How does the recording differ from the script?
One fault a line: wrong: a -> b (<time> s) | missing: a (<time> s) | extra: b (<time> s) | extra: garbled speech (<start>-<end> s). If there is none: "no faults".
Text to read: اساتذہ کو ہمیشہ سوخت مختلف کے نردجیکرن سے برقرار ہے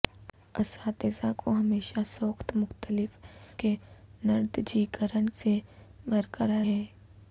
no faults